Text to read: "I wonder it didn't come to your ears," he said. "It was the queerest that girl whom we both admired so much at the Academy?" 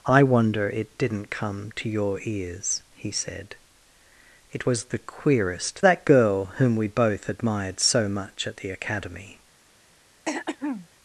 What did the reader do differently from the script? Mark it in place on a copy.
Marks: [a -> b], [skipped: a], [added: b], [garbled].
"I wonder it didn't come to your ears," he said. "It was the queerest that girl whom we both admired so much at the Academy?"